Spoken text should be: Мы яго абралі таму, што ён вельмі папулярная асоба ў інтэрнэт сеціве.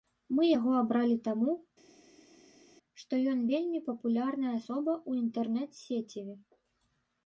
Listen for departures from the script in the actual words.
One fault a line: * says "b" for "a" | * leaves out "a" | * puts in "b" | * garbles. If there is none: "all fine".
all fine